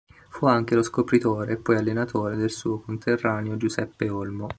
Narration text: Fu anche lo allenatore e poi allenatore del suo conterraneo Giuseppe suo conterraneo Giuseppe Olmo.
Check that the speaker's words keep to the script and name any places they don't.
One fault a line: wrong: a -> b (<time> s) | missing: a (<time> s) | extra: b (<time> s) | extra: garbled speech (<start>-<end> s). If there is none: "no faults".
wrong: allenatore -> scopritore (0.8 s)
missing: suo conterraneo Giuseppe (4.1 s)